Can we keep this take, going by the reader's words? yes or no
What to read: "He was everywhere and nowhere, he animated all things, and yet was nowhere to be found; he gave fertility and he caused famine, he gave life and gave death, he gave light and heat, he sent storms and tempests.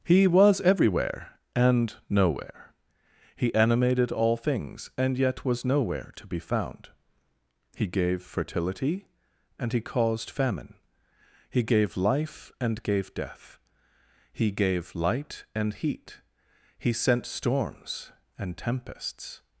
yes